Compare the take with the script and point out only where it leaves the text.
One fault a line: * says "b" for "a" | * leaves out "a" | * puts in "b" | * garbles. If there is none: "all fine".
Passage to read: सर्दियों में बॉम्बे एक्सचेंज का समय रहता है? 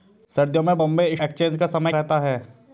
all fine